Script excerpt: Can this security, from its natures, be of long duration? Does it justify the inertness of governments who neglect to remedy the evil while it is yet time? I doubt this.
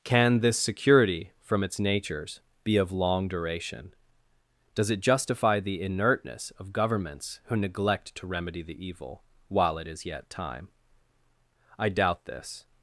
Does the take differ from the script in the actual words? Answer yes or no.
no